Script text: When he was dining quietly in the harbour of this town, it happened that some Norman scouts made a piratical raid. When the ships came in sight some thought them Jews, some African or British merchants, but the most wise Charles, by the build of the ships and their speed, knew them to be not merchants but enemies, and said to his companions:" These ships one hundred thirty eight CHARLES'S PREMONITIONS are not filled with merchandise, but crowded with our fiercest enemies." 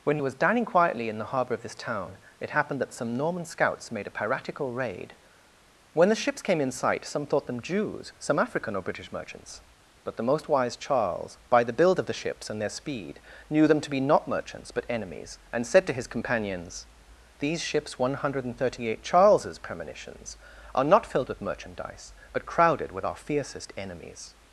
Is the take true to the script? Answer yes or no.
yes